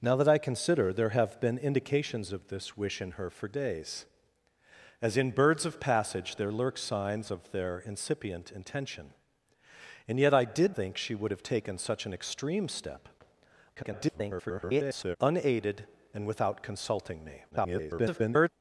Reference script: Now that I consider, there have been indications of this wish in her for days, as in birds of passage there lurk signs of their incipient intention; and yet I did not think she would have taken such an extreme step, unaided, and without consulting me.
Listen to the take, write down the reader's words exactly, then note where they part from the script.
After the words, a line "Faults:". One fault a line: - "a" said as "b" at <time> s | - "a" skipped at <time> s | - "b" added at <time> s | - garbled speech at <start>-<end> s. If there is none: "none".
Now that I consider, there have been indications of this wish in her for days, as in birds of passage there lurk signs of their incipient intention; and yet I did think she would have taken such an extreme step, [garbled] unaided, and without consulting me. [garbled]
Faults:
- "not" skipped at 10.8 s
- garbled speech at 13.8-15.2 s
- garbled speech at 17.5-18.5 s